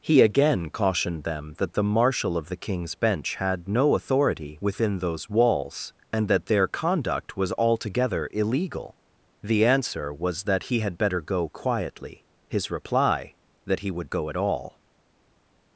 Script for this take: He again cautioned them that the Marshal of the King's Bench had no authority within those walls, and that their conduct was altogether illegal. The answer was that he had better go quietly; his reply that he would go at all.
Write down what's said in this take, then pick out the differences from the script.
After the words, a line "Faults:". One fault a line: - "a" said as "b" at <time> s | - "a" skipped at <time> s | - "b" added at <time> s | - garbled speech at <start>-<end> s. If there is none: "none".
He again cautioned them that the Marshal of the King's Bench had no authority within those walls, and that their conduct was altogether illegal. The answer was that he had better go quietly; his reply that he would go at all.
Faults:
none